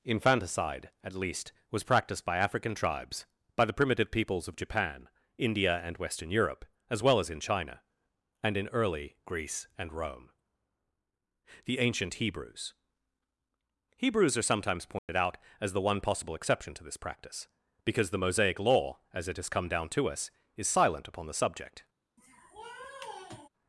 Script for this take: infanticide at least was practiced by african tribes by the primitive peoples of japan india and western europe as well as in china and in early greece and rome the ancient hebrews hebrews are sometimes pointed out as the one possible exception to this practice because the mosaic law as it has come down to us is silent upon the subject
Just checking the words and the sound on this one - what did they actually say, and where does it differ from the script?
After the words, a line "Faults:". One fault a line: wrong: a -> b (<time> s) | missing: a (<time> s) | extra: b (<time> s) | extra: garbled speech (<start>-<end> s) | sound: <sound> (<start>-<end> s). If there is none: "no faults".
infanticide at least was practiced by african tribes by the primitive peoples of japan india and western europe as well as in china and in early greece and rome the ancient hebrews hebrews are sometimes pointed out as the one possible exception to this practice because the mosaic law as it has come down to us is silent upon the subject
Faults:
sound: dropout (15.0-15.1 s)
sound: sniff (22.2-23.5 s)